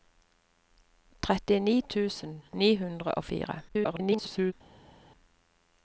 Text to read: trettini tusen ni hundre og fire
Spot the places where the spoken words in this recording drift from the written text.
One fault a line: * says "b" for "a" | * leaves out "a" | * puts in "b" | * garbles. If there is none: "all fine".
* garbles